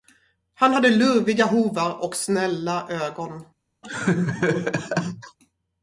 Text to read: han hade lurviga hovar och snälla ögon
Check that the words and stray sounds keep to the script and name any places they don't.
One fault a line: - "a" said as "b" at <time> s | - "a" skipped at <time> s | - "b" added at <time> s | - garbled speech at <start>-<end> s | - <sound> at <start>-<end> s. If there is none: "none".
- laugh at 3.8-5.4 s